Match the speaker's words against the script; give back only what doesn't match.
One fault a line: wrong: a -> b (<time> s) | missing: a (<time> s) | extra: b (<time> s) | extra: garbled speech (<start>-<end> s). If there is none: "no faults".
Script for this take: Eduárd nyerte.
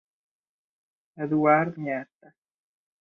no faults